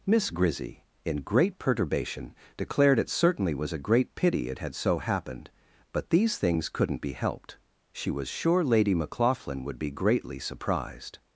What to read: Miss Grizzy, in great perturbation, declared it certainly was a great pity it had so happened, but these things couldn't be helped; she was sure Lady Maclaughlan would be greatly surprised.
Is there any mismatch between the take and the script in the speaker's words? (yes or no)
no